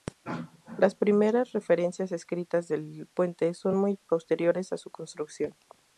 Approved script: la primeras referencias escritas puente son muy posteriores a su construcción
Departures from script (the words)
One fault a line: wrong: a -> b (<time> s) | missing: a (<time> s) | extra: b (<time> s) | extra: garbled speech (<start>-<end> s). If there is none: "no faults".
wrong: la -> las (0.8 s)
extra: del (2.7 s)